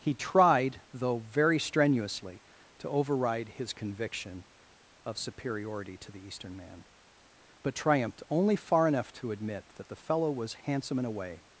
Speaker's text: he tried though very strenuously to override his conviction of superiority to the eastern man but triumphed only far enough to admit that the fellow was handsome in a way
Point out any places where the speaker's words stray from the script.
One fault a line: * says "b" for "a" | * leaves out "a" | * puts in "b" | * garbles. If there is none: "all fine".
all fine